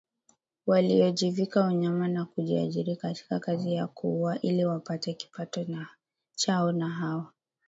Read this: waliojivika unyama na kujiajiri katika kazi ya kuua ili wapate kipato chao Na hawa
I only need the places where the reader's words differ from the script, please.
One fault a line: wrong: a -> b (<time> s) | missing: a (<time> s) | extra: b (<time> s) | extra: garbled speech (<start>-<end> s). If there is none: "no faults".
no faults